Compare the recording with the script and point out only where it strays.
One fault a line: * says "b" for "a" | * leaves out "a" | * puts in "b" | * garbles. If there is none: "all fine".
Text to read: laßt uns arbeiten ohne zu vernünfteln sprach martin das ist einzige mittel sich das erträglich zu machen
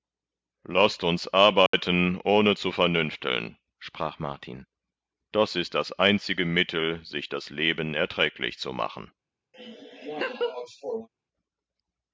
* puts in "das"
* puts in "leben"